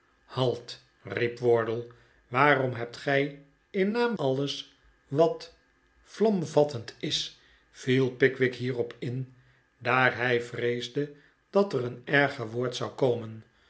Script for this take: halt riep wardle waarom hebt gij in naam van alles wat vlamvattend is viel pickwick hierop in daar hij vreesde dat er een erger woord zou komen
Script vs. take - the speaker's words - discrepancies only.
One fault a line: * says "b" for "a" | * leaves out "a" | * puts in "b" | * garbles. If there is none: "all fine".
* leaves out "van"